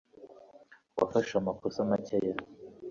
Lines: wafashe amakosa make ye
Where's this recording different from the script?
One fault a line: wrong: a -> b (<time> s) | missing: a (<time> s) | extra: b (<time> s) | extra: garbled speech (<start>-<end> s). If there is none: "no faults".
no faults